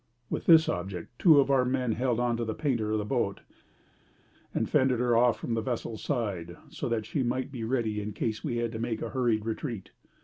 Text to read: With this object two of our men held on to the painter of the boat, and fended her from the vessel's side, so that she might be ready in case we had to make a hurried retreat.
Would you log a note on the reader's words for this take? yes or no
yes